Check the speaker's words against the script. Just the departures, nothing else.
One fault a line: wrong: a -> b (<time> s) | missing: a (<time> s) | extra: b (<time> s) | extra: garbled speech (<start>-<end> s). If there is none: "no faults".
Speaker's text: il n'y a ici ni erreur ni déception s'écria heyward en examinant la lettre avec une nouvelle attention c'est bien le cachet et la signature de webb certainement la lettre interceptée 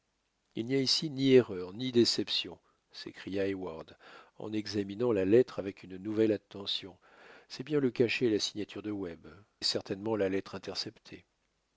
no faults